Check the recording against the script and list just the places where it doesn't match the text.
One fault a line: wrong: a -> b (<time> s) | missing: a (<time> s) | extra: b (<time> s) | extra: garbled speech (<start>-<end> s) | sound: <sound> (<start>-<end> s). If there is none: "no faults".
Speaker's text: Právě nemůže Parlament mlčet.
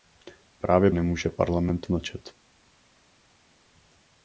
no faults